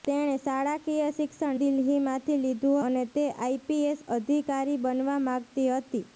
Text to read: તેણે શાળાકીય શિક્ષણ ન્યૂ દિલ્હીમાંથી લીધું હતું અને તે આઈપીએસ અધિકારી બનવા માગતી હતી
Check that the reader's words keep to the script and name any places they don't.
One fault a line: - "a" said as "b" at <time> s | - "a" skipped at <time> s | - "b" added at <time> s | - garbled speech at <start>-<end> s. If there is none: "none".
- "ન્યૂ" skipped at 1.6 s
- "હતું" skipped at 2.8 s